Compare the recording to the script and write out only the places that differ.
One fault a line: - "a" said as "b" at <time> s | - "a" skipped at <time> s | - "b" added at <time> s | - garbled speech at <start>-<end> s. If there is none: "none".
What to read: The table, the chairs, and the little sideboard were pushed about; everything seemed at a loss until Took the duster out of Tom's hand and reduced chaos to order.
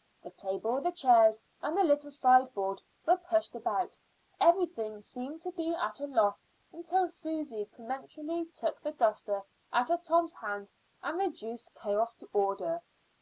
- "to be" added at 5.4 s
- "Susy peremptorily" added at 7.1 s